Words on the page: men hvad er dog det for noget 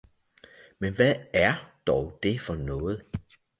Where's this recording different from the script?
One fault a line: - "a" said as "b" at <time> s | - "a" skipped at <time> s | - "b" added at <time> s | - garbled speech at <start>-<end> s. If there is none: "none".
none